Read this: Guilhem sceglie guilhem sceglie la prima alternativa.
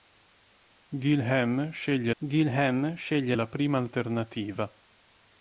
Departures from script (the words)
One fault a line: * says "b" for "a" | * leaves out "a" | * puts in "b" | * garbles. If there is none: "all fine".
all fine